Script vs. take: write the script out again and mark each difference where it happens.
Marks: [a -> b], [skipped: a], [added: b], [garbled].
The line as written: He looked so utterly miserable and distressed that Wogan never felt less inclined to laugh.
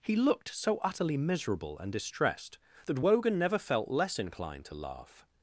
He looked so utterly miserable and distressed that Wogan never felt less inclined to laugh.